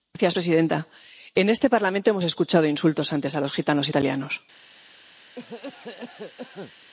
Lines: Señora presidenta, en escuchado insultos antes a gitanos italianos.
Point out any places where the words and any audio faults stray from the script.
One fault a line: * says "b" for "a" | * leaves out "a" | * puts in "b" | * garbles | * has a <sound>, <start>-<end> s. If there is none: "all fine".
* puts in "este Parlamento hemos"
* puts in "los"
* has a cough, 5.4-6.7 s